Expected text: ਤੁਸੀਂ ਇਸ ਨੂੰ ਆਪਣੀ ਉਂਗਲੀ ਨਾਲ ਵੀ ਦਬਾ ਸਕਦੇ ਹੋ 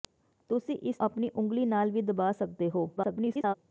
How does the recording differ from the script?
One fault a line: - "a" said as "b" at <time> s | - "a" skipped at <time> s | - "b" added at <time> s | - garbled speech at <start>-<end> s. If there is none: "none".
- "ਨੂੰ" skipped at 1.0 s
- garbled speech at 3.0-3.5 s